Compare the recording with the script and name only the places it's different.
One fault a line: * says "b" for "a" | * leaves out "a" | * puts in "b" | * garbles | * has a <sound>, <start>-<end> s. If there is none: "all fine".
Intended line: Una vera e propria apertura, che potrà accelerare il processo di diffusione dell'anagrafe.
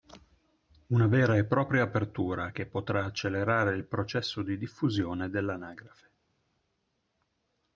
all fine